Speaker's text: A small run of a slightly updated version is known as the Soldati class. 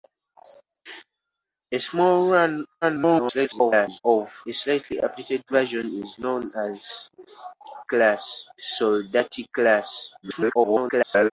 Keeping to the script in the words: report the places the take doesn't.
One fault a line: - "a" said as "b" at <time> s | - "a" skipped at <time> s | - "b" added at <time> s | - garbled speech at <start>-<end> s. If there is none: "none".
- garbled speech at 2.8-4.0 s
- "the" said as "class" at 7.9 s
- garbled speech at 10.2-11.3 s